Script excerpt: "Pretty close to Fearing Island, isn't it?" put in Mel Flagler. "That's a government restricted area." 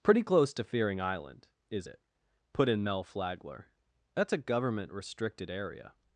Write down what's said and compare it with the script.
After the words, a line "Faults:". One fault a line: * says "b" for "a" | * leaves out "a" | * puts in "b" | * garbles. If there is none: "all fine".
"Pretty close to Fearing Island, is it?" put in Mel Flagler. "That's a government restricted area."
Faults:
* says "is" for "isn't"